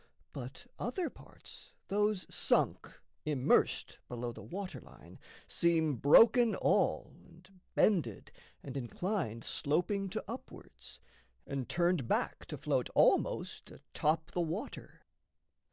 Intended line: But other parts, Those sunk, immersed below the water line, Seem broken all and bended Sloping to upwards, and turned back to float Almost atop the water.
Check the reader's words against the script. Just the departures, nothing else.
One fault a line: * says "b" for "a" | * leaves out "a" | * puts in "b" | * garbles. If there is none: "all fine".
* puts in "and inclined"